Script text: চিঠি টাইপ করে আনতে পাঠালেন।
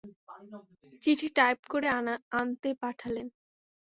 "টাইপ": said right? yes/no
yes